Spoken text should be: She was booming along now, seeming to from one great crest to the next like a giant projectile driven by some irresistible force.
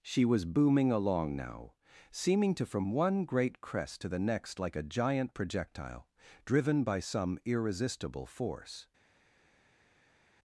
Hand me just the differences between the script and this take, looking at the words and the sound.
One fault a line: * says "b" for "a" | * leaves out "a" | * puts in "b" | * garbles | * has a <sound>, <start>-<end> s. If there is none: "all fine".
all fine